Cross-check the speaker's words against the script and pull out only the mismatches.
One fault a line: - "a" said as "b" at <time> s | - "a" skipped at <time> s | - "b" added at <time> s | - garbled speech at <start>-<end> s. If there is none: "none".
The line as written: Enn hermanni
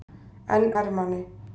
none